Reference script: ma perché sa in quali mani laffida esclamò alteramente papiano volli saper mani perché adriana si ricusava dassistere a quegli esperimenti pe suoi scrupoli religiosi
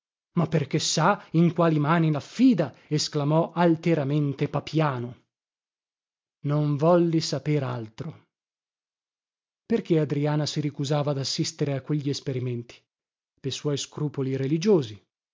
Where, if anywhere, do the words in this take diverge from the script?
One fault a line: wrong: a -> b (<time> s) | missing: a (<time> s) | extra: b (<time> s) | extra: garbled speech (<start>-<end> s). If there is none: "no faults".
extra: non (6.4 s)
wrong: mani -> altro (7.6 s)